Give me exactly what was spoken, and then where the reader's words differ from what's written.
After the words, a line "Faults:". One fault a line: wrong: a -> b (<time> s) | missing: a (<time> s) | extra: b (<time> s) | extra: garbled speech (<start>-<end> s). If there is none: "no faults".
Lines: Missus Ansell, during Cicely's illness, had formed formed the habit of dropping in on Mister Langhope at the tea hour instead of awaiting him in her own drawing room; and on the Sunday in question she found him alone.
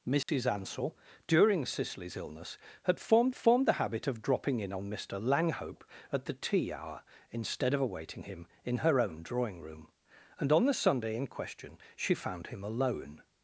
Missus Ansell, during Cicely's illness, had formed formed the habit of dropping in on Mister Langhope at the tea hour instead of awaiting him in her own drawing room; and on the Sunday in question she found him alone.
Faults:
no faults